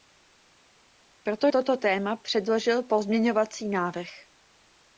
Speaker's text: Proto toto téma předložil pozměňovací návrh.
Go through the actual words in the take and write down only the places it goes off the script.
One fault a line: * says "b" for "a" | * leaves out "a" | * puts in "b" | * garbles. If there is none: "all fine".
all fine